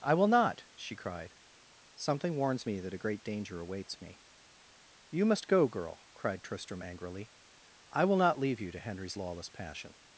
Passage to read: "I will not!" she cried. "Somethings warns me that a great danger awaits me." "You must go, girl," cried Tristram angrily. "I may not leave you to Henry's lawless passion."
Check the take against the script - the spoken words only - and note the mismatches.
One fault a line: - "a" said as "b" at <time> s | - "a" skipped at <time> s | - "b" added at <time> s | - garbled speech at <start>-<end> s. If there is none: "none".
- "Somethings" said as "Something" at 1.9 s
- "may" said as "will" at 8.0 s